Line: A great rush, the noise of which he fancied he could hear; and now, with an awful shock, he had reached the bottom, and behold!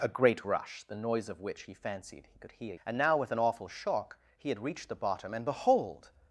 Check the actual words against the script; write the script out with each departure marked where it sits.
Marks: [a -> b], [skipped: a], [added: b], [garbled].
A great rush, the noise of which he fancied he could hear; and now, with an awful shock, he had reached the bottom, and behold!